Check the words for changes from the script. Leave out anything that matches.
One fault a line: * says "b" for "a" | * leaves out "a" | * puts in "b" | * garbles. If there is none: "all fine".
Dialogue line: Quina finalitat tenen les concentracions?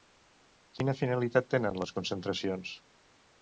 all fine